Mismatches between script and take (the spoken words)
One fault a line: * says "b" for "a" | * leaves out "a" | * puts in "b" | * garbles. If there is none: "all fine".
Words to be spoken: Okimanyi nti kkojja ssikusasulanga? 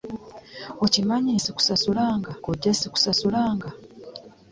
* says "ssikusasulanga" for "nti"